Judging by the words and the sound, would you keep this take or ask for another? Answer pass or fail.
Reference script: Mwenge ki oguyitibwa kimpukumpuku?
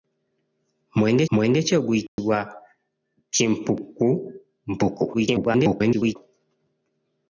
fail